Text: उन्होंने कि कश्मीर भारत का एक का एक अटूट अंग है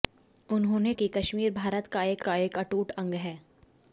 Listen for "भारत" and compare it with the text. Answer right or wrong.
right